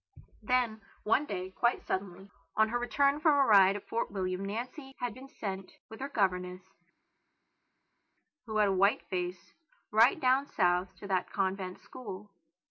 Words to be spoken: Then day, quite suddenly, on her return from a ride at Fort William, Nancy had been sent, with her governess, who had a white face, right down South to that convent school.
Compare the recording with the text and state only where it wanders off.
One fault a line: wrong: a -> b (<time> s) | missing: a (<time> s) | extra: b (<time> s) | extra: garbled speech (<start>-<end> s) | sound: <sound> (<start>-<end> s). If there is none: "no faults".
extra: one (1.0 s)